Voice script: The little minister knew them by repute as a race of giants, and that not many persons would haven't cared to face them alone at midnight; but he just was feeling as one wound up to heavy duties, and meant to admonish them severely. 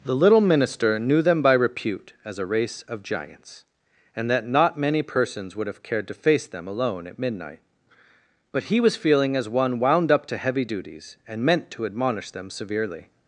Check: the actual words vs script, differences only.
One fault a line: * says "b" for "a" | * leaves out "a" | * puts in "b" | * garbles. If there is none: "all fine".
* says "have" for "haven't"
* leaves out "just"